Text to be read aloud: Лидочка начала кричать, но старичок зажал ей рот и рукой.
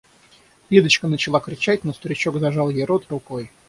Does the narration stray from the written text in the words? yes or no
no